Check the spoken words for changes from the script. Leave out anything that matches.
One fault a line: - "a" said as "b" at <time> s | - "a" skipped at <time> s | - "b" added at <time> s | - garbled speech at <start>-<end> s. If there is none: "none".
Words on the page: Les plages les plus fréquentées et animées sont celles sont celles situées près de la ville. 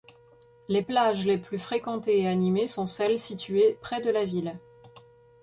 - "sont celles" skipped at 3.2 s